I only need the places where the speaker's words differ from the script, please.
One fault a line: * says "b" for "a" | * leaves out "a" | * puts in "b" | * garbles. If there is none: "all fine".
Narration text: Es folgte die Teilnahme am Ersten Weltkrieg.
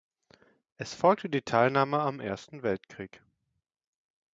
all fine